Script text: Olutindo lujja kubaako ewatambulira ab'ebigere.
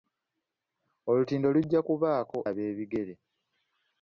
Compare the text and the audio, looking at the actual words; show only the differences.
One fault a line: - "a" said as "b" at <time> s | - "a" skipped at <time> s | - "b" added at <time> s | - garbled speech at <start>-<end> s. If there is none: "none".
- "ewatambulira" skipped at 2.4 s